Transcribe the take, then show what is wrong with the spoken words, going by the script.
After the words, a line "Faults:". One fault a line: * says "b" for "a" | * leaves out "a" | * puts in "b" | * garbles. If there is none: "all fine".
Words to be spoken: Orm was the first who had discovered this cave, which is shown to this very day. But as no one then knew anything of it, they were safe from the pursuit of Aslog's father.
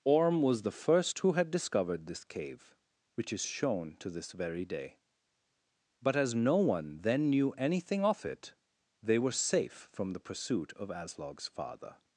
Orm was the first who had discovered this cave, which is shown to this very day. But as no one then knew anything of it, they were safe from the pursuit of Aslog's father.
Faults:
all fine